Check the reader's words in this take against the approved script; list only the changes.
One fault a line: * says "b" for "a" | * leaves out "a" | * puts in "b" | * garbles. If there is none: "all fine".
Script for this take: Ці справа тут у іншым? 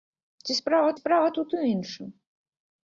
* puts in "справа"